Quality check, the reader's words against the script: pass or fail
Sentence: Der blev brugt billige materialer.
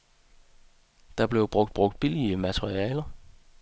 fail